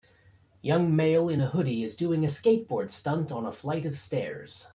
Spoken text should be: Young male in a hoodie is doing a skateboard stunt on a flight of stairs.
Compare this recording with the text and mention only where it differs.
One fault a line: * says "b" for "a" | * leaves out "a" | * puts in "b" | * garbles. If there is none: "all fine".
all fine